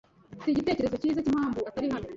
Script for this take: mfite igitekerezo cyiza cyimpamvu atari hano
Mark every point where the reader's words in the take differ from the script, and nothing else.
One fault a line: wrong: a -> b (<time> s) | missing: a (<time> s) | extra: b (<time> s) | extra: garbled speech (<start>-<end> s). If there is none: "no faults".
no faults